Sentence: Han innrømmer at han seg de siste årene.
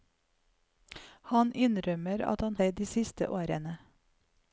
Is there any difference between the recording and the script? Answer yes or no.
no